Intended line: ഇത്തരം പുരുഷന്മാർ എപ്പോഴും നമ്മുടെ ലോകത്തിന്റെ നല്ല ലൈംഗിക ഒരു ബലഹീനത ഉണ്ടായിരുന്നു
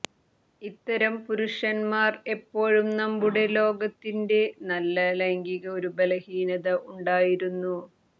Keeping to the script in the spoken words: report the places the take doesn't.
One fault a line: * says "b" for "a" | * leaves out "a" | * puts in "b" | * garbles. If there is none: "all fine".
all fine